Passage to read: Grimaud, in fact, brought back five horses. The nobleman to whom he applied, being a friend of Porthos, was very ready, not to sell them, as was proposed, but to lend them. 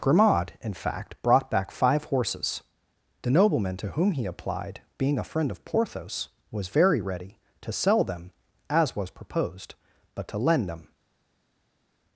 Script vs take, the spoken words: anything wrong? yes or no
yes